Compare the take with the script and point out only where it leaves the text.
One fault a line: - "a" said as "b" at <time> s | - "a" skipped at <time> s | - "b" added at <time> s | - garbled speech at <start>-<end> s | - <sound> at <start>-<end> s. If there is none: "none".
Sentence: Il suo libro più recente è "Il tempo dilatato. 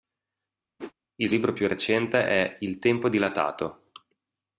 - whoosh at 0.8-0.9 s
- "suo" skipped at 1.3 s